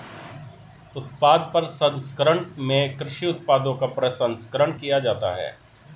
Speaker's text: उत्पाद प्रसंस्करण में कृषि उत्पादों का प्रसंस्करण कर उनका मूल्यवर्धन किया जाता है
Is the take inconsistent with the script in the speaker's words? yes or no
yes